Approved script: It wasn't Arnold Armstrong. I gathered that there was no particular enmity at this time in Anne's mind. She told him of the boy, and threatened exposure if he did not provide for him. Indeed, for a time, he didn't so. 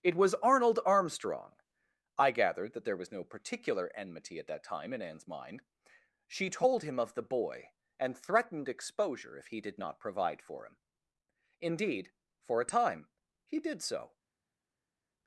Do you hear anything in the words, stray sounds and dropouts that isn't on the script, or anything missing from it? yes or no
yes